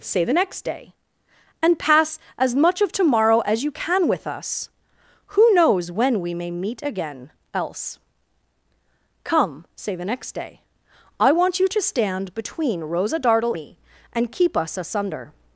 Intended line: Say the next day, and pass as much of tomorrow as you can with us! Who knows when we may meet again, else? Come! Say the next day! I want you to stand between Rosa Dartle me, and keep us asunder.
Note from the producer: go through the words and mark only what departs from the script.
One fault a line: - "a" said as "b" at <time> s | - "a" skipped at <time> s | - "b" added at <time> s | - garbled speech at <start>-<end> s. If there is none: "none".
none